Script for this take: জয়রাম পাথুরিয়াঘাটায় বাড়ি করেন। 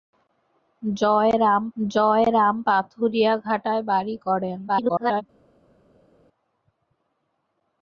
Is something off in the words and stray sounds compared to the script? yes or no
yes